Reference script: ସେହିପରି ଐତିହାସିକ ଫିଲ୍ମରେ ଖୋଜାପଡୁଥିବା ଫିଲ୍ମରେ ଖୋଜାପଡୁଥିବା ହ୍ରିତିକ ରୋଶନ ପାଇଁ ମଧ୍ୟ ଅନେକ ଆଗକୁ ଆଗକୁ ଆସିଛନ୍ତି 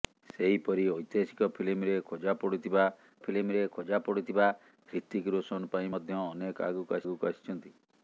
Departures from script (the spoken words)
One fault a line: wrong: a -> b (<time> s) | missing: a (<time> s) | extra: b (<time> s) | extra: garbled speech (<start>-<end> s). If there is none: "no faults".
no faults